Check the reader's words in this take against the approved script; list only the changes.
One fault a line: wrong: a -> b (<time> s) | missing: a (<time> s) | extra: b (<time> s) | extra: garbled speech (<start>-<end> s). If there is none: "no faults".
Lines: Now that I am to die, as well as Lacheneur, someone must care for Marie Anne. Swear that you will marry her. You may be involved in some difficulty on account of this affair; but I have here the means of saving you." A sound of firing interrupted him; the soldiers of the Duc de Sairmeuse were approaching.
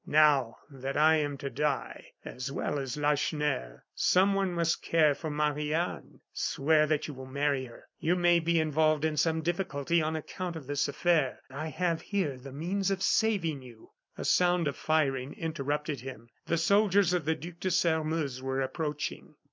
missing: but (11.4 s)